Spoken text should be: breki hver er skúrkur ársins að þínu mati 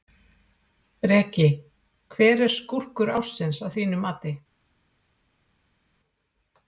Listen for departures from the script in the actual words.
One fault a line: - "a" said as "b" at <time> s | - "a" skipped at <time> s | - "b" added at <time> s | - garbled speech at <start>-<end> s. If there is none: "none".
none